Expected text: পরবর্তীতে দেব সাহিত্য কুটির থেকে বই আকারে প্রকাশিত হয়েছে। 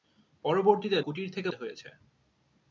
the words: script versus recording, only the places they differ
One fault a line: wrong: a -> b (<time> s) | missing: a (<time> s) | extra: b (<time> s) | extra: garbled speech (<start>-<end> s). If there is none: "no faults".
missing: দেব সাহিত্য (1.0 s)
missing: বই আকারে প্রকাশিত (1.5 s)